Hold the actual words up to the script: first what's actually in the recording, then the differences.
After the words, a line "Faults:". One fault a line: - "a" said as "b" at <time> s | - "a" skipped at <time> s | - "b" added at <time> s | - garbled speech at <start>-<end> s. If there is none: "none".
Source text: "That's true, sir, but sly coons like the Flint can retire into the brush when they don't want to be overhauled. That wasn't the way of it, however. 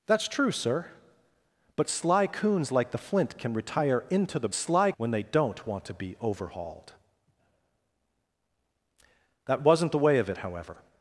"That's true, sir, but sly coons like the Flint can retire into the sly when they don't want to be overhauled. That wasn't the way of it, however.
Faults:
- "brush" said as "sly" at 4.5 s